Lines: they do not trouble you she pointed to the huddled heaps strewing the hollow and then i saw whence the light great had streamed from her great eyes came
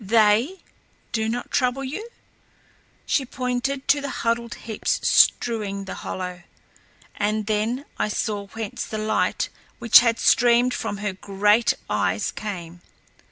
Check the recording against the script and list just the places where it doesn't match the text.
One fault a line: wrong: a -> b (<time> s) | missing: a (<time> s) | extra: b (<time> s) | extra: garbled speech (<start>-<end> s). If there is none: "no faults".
wrong: great -> which (9.8 s)